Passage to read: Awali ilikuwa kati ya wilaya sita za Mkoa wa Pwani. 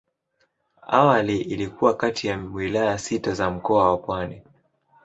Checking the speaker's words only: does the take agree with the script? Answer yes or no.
yes